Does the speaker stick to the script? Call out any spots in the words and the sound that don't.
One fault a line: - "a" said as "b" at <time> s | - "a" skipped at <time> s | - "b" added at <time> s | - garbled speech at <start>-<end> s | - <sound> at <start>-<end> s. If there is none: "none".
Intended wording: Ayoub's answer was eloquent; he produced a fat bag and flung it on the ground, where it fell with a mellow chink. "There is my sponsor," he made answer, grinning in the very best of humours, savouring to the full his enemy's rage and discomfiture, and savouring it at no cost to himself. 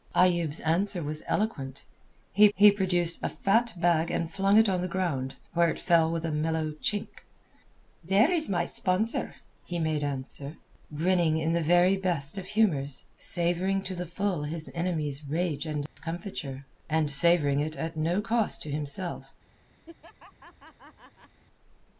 - "he" added at 2.6 s
- dropout at 15.9-16.0 s
- laugh at 19.9-21.4 s